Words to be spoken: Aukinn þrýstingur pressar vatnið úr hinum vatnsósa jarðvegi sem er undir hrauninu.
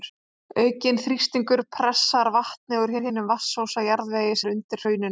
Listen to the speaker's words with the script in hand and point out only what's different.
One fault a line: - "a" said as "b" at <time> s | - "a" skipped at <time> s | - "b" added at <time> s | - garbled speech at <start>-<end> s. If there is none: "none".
- "úr" added at 3.0 s
- "sem" skipped at 4.4 s